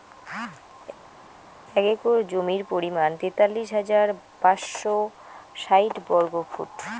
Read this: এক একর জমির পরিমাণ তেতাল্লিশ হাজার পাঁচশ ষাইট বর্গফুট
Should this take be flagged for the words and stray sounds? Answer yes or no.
no